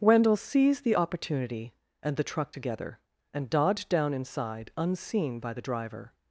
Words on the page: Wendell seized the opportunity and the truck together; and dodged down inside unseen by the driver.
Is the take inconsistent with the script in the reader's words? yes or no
no